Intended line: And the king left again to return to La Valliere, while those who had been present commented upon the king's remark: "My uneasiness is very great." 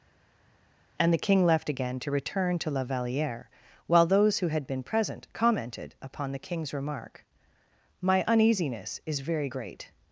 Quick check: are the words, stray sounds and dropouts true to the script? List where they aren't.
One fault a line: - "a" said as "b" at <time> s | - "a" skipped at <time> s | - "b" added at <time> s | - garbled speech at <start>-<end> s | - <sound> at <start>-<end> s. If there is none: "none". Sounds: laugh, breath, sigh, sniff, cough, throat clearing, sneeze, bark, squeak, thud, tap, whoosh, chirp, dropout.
none